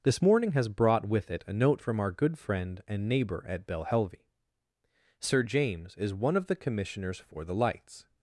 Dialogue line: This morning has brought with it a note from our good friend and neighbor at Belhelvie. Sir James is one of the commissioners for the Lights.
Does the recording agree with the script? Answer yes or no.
yes